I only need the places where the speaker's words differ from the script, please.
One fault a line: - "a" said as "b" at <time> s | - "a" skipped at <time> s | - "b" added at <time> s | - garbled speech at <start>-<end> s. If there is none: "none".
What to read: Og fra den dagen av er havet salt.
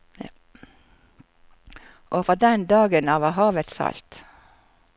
none